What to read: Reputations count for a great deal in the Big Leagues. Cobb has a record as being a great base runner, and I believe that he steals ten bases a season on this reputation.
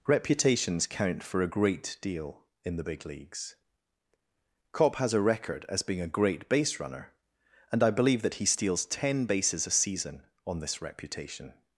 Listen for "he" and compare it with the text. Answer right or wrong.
right